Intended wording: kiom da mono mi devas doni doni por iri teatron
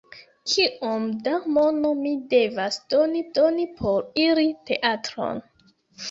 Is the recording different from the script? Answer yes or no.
no